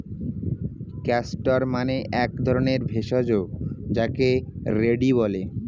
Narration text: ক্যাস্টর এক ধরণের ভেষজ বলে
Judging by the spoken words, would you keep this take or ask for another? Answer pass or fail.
fail